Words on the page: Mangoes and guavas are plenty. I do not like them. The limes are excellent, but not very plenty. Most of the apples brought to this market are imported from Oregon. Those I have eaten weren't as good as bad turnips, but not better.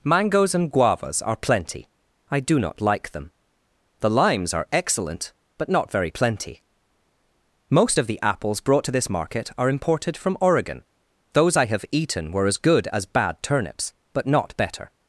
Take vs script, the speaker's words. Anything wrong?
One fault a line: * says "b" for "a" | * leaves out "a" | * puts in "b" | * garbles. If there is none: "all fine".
* says "were" for "weren't"